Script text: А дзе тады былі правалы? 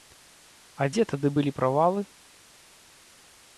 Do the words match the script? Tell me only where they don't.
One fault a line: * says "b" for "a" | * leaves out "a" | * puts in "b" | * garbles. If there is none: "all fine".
all fine